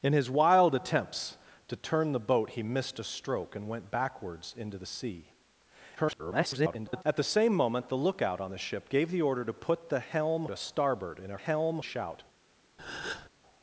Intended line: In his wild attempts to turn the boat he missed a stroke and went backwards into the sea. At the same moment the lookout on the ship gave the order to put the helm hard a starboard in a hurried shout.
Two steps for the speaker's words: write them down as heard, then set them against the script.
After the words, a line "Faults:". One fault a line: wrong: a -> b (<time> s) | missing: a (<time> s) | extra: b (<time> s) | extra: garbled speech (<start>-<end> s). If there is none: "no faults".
In his wild attempts to turn the boat he missed a stroke and went backwards into the sea. [garbled] At the same moment the lookout on the ship gave the order to put the helm a starboard in a helm shout.
Faults:
extra: garbled speech (6.0-7.0 s)
missing: hard (10.5 s)
wrong: hurried -> helm (11.3 s)